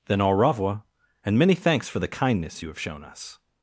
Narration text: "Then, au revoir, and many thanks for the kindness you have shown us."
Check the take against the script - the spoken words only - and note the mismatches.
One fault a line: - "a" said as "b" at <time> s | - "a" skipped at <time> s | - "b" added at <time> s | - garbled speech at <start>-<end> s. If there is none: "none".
none